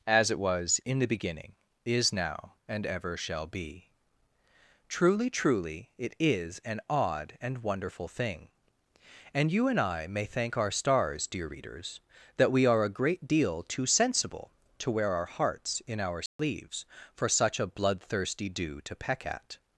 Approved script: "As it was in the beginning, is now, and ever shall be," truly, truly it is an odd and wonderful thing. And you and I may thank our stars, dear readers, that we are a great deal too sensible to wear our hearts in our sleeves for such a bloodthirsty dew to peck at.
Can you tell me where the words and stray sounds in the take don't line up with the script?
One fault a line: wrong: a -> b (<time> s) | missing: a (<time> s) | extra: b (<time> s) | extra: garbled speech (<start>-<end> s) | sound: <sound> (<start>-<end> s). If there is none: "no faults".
sound: dropout (16.3-16.4 s)